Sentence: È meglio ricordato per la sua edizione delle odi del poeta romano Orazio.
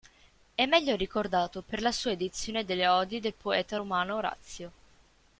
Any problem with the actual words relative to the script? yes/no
no